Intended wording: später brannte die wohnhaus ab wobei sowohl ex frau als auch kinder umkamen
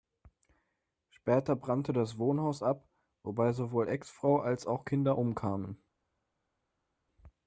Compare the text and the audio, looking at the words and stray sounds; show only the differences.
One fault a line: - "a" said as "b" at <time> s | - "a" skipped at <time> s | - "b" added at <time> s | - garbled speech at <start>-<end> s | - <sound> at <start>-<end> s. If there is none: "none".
- "die" said as "das" at 1.9 s